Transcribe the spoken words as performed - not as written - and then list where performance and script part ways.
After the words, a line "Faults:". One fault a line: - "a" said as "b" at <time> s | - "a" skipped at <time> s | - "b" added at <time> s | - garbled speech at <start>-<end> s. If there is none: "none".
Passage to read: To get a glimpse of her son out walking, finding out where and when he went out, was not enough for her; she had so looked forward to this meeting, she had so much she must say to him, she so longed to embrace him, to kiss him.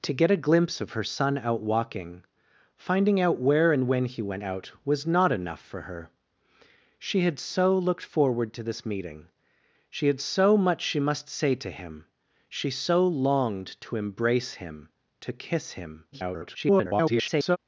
To get a glimpse of her son out walking, finding out where and when he went out, was not enough for her; she had so looked forward to this meeting, she had so much she must say to him, she so longed to embrace him, to kiss him. [garbled]
Faults:
- garbled speech at 16.1-17.6 s